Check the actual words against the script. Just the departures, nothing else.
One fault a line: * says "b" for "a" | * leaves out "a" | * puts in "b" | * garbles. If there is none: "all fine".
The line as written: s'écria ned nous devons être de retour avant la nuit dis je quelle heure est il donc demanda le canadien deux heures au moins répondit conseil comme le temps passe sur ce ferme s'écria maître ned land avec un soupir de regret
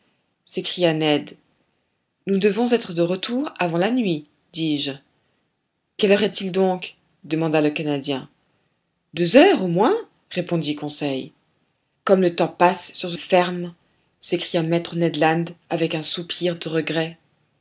all fine